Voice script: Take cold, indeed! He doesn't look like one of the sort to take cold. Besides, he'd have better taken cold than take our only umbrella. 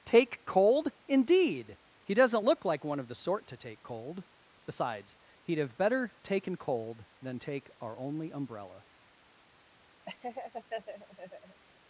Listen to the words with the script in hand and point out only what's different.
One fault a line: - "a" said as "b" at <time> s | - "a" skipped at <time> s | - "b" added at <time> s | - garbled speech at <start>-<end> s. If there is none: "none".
none